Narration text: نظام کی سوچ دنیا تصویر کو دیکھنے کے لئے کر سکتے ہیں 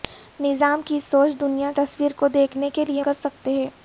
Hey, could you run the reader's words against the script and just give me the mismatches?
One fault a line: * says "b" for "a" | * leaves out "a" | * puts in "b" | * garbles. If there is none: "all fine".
all fine